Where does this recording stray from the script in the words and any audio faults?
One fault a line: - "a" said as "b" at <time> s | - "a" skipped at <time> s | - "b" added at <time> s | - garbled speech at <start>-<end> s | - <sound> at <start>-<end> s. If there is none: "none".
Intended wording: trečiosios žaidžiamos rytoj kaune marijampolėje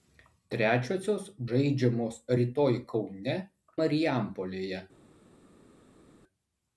none